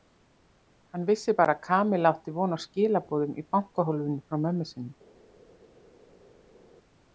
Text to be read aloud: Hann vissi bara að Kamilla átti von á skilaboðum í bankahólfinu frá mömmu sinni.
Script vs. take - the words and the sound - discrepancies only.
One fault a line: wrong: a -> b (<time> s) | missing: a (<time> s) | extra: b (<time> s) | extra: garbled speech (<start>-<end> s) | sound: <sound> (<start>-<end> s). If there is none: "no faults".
no faults